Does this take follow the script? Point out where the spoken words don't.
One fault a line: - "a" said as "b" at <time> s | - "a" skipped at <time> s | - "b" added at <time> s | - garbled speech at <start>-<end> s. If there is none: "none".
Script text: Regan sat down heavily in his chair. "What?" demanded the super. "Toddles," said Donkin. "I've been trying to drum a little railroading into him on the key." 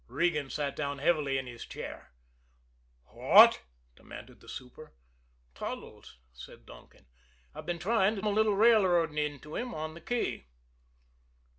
- "drum" skipped at 8.2 s